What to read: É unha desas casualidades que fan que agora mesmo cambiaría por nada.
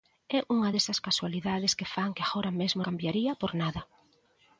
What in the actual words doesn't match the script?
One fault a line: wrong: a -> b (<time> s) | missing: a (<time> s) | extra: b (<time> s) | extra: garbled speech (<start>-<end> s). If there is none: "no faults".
no faults